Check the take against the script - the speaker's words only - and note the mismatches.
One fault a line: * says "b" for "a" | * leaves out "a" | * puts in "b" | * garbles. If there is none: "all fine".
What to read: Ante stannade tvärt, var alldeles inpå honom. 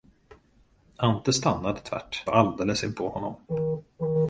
all fine